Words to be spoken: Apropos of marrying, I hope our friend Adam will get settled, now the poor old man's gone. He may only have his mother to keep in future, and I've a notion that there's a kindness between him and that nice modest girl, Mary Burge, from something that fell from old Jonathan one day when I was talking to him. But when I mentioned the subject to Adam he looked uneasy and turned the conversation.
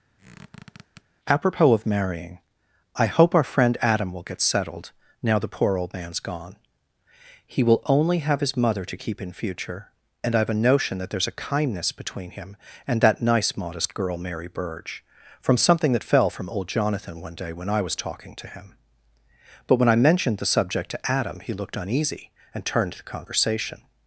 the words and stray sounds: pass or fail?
fail